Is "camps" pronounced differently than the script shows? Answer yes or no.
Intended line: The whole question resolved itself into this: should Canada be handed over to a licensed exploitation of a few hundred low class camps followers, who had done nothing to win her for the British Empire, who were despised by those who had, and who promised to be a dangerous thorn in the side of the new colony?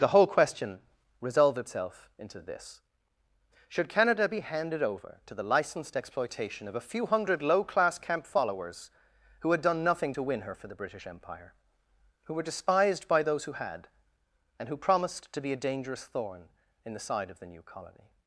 yes